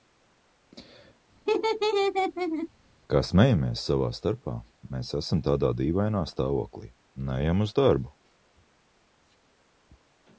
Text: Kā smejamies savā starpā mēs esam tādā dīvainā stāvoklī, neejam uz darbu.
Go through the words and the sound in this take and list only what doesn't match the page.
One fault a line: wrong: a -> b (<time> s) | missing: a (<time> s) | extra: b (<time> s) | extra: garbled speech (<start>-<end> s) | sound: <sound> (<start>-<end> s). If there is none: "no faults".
sound: laugh (1.5-2.7 s)